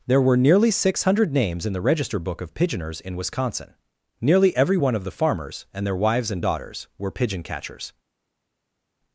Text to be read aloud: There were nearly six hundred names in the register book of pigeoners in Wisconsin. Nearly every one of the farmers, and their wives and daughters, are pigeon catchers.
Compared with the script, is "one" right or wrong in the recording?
right